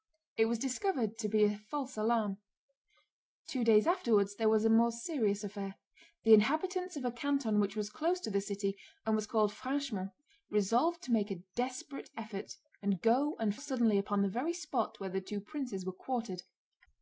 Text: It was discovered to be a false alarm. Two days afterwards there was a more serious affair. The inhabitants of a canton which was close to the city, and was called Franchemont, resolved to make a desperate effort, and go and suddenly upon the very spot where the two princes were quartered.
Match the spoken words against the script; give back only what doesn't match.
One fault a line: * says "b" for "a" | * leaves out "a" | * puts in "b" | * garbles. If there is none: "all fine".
all fine